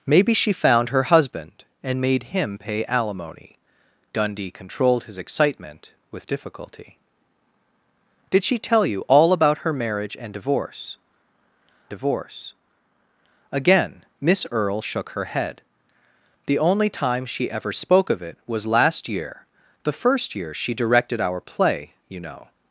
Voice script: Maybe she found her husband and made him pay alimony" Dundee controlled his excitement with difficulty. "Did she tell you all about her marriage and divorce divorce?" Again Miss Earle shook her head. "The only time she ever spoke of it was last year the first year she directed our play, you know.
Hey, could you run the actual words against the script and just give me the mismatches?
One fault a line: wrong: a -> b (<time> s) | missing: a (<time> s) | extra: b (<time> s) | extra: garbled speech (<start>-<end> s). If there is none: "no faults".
no faults